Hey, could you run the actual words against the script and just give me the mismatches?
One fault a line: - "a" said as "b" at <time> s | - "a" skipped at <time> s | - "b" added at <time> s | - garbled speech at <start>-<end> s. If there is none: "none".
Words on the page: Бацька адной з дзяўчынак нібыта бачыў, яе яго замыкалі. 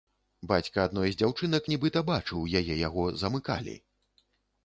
none